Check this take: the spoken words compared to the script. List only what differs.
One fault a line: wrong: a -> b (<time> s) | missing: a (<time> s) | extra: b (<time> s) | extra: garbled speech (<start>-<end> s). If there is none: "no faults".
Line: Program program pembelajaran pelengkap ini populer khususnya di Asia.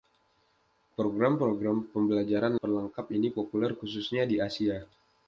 no faults